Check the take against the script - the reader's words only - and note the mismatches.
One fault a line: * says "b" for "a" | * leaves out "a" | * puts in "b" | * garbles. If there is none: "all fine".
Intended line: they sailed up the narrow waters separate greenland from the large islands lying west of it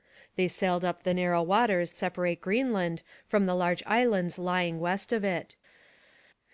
all fine